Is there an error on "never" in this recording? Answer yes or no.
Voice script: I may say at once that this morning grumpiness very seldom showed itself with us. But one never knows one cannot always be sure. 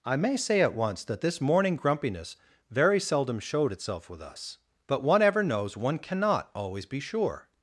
yes